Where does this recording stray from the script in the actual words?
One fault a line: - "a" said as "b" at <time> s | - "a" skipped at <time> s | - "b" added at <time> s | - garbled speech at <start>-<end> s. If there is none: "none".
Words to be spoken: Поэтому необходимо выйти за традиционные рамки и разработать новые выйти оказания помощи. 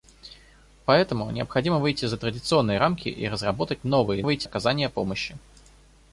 none